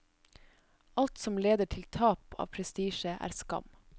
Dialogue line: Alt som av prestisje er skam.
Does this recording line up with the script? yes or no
no